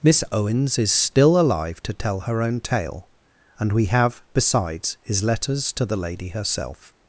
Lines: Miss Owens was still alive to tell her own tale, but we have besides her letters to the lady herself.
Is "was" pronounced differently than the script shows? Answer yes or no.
yes